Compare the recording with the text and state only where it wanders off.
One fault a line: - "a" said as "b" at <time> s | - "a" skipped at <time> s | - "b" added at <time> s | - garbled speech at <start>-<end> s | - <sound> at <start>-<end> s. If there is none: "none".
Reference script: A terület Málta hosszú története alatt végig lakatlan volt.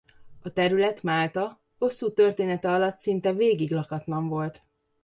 - "szinte" added at 3.0 s